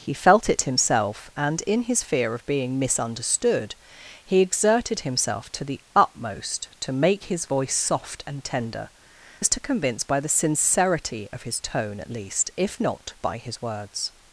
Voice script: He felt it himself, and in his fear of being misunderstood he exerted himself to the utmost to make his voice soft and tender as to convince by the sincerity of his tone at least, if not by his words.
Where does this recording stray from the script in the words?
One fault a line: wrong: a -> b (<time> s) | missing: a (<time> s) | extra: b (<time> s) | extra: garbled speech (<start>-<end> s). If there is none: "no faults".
no faults